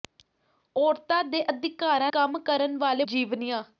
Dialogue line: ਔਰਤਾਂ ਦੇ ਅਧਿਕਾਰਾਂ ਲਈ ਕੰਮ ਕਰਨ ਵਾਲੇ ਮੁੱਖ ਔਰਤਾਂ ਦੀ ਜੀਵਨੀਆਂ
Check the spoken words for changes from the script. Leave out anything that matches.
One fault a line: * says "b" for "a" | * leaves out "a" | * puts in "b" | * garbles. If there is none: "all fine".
* leaves out "ਲਈ"
* leaves out "ਮੁੱਖ ਔਰਤਾਂ ਦੀ"